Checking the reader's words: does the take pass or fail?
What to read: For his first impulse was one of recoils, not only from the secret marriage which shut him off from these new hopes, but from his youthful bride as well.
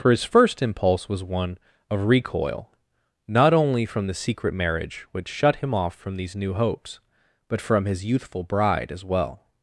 fail